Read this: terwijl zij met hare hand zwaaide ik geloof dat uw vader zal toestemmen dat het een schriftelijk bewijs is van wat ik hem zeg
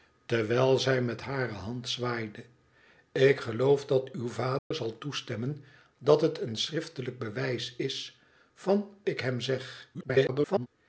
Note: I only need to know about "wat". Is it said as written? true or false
false